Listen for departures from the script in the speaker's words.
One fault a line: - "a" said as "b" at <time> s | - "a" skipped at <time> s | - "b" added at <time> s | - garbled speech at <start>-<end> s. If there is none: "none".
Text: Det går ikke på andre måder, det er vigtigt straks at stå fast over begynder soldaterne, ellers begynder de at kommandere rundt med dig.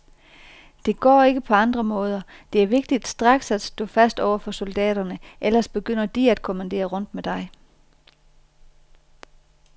- "begynder" said as "for" at 4.4 s